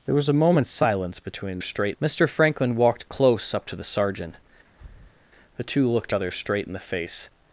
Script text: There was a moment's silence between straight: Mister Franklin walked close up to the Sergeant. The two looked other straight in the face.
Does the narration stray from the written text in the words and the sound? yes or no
yes